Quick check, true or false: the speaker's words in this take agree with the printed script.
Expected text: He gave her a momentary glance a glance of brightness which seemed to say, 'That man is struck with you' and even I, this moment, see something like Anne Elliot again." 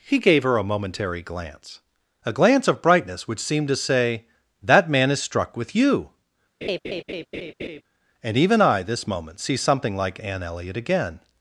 true